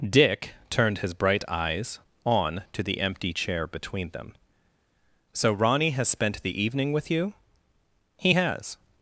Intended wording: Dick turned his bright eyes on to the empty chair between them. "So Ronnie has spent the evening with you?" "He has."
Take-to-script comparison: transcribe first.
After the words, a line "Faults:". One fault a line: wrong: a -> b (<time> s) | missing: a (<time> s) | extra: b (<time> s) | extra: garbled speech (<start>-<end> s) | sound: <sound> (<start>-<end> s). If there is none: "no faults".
Dick turned his bright eyes on to the empty chair between them. "So Ronnie has spent the evening with you?" "He has."
Faults:
no faults